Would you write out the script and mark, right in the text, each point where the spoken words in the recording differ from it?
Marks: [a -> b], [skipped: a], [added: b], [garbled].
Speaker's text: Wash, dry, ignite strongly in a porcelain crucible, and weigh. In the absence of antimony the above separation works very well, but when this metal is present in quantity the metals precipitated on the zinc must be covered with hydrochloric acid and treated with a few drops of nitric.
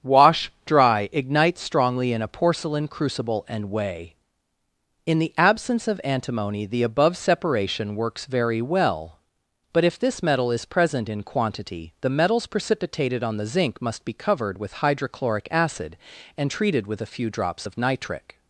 Wash, dry, ignite strongly in a porcelain crucible, and weigh. In the absence of antimony the above separation works very well, but [when -> if] this metal is present in quantity the metals precipitated on the zinc must be covered with hydrochloric acid and treated with a few drops of nitric.